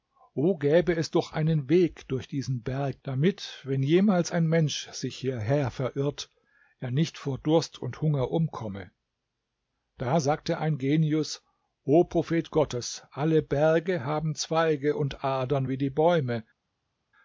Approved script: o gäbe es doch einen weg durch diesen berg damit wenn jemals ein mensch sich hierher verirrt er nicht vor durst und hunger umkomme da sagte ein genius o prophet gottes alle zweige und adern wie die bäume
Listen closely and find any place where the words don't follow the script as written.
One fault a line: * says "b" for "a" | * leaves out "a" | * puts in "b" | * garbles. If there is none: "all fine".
* puts in "berge haben"